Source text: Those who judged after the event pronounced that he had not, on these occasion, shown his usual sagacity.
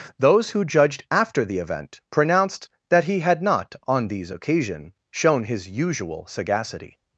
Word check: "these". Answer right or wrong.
right